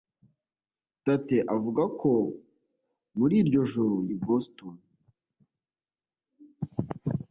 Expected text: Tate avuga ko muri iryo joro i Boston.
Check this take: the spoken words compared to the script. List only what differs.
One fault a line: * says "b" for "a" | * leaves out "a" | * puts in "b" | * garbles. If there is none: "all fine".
all fine